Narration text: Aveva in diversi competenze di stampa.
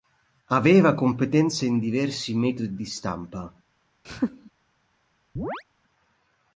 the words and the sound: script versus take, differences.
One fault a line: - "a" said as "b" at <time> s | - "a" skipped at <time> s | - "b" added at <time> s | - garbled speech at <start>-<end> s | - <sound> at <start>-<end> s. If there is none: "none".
- "competenze" added at 0.9 s
- "competenze" said as "metodi" at 2.3 s
- laugh at 4.0-4.5 s
- chirp at 5.4-5.6 s